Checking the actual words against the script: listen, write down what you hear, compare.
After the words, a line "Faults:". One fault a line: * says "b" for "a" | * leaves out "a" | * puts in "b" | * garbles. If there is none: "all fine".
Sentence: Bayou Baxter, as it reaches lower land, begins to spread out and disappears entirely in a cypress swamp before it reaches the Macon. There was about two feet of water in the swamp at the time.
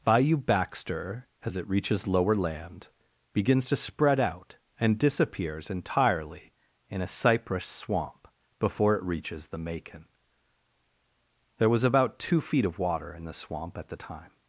Bayou Baxter, as it reaches lower land, begins to spread out and disappears entirely in a cypress swamp before it reaches the Macon. There was about two feet of water in the swamp at the time.
Faults:
all fine